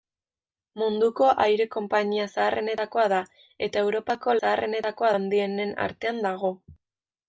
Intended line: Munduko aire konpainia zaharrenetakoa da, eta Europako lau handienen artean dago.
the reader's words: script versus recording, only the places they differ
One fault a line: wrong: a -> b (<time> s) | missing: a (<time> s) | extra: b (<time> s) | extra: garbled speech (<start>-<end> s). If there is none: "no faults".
wrong: lau -> zaharrenetakoa (4.4 s)